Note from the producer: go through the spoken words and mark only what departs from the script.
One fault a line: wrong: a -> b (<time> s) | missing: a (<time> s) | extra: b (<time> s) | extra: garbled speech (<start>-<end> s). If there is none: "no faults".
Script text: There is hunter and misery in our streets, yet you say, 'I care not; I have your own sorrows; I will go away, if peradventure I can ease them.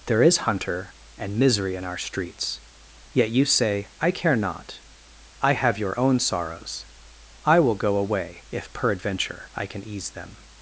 no faults